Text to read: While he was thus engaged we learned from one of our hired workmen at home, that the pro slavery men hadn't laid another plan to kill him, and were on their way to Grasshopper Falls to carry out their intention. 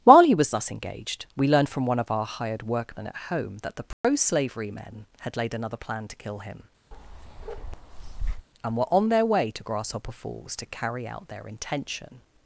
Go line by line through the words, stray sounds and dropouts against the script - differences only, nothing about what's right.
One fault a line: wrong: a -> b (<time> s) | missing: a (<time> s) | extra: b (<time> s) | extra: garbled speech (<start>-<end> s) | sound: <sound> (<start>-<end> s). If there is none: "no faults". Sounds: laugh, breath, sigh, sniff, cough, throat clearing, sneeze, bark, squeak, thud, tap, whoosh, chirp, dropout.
sound: dropout (3.9-4.0 s)
wrong: hadn't -> had (5.2 s)
sound: bark (6.9-8.5 s)